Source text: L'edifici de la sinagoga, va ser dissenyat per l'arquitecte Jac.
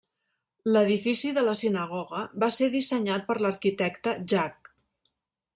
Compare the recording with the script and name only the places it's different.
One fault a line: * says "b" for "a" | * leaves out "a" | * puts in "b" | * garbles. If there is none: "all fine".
all fine